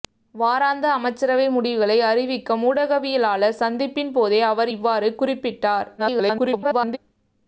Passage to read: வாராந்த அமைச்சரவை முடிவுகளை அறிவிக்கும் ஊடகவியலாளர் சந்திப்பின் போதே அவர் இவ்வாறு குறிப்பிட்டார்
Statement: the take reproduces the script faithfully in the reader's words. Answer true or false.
false